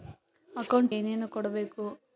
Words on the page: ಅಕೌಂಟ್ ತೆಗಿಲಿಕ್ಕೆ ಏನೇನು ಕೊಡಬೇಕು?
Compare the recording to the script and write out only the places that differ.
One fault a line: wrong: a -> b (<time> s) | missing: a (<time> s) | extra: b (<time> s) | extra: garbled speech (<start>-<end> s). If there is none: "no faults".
missing: ತೆಗಿಲಿಕ್ಕೆ (0.9 s)